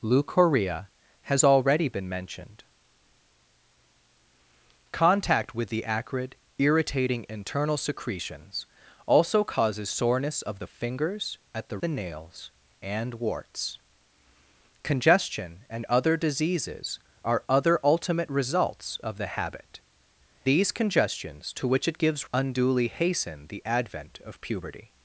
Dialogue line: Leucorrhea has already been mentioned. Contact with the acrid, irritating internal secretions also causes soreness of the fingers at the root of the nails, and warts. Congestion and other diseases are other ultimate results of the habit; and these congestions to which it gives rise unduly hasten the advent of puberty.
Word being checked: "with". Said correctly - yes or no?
yes